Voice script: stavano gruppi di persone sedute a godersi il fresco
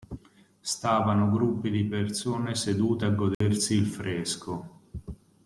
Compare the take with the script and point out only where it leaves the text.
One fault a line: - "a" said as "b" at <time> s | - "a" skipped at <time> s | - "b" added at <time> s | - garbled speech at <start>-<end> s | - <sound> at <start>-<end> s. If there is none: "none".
- dropout at 3.3-3.4 s